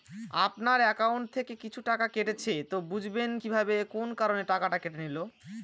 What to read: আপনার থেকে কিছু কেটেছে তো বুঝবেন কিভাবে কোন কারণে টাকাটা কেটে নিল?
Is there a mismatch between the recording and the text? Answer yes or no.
yes